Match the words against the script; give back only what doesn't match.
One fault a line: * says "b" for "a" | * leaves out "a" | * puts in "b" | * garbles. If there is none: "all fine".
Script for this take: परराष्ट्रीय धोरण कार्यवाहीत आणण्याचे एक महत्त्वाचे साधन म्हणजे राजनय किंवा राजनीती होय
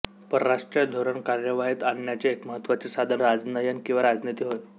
* leaves out "म्हणजे"